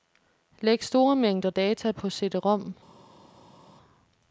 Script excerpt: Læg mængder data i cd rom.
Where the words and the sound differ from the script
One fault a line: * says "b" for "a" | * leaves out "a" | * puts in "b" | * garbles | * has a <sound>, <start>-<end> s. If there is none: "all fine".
* puts in "store"
* says "på" for "i"